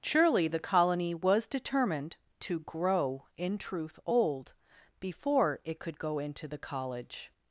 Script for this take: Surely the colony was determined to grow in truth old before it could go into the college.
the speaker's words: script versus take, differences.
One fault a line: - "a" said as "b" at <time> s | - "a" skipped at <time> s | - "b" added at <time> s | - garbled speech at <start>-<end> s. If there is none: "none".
none